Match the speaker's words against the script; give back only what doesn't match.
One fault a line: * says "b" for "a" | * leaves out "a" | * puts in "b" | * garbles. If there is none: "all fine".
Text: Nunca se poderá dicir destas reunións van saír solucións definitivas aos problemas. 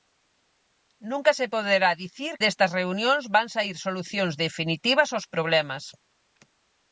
all fine